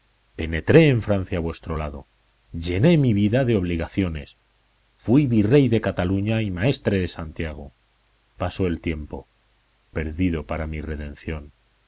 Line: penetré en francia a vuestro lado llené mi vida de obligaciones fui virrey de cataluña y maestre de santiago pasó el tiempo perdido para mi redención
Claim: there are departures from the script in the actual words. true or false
false